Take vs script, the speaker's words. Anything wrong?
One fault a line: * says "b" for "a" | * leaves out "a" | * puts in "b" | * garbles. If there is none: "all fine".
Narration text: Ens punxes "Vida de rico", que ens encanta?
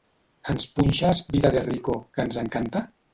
all fine